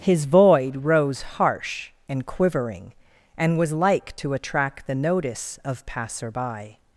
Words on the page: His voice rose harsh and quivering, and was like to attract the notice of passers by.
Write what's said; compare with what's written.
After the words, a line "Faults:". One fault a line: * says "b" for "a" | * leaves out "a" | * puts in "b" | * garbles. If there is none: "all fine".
His void rose harsh and quivering, and was like to attract the notice of passer by.
Faults:
* says "void" for "voice"
* says "passer" for "passers"